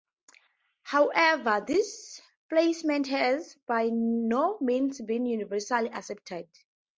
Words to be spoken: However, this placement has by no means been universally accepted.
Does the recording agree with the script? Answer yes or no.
yes